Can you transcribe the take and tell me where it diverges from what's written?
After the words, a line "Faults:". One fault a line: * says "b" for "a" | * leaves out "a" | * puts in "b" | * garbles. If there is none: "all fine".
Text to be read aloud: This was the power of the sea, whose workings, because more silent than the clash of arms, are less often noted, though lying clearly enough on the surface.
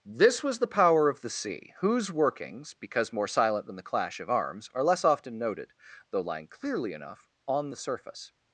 This was the power of the sea, whose workings, because more silent than the clash of arms, are less often noted, though lying clearly enough on the surface.
Faults:
all fine